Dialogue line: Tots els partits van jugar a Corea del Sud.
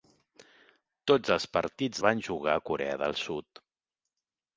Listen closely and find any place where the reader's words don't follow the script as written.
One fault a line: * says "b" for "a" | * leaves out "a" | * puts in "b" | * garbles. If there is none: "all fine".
all fine